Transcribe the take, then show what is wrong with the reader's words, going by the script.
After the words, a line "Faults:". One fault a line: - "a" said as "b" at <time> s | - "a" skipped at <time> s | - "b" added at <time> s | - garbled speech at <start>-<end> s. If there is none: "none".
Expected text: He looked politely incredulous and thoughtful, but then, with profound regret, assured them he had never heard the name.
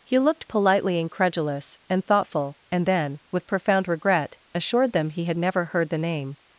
He looked politely incredulous and thoughtful, and then, with profound regret, assured them he had never heard the name.
Faults:
- "but" said as "and" at 2.7 s